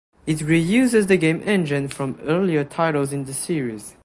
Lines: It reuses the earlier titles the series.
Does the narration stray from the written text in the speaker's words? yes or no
yes